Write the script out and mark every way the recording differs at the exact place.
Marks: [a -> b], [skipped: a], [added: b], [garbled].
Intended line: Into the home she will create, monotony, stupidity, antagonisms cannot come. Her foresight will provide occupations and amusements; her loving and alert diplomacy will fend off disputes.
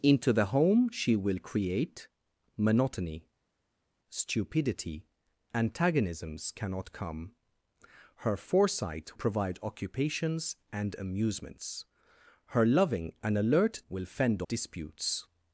Into the home she will create, monotony, stupidity, antagonisms cannot come. Her foresight [skipped: will] provide occupations and amusements; her loving and alert [skipped: diplomacy] will fend [skipped: off] disputes.